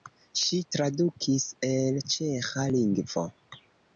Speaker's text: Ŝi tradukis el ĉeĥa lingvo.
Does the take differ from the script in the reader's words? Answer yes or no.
no